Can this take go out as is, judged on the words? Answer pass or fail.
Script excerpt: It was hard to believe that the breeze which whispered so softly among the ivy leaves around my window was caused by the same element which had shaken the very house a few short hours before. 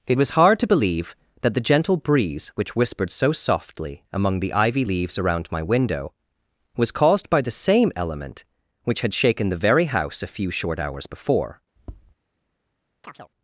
fail